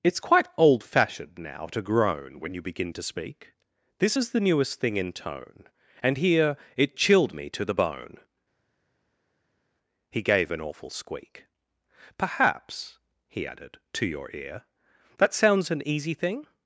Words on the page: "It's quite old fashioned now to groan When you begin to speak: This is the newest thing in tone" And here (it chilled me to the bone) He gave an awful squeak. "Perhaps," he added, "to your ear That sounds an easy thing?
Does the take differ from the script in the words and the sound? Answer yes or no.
no